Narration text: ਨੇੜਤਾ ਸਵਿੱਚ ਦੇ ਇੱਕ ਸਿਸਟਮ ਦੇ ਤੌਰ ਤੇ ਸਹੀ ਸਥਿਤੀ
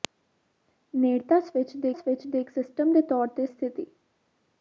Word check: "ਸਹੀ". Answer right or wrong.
wrong